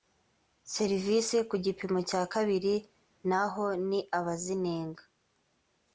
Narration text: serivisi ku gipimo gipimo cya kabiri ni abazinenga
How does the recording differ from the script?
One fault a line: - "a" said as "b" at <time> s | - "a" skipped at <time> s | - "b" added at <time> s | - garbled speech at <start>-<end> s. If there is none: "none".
- "gipimo" skipped at 2.0 s
- "naho" added at 3.3 s